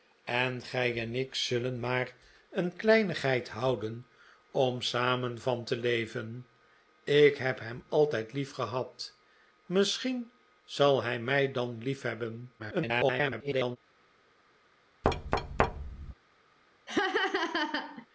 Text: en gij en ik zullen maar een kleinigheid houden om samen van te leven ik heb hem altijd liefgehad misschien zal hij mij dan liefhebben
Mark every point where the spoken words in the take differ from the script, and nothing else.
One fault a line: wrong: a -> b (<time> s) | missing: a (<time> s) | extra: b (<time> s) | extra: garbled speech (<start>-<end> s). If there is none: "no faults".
extra: garbled speech (12.6-13.8 s)